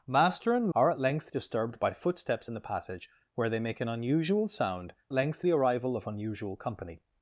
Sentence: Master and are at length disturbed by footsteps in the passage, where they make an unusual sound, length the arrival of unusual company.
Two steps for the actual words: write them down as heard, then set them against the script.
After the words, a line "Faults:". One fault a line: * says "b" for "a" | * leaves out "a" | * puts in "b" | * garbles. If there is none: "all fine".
Master and are at length disturbed by footsteps in the passage, where they make an unusual sound, length the arrival of unusual company.
Faults:
all fine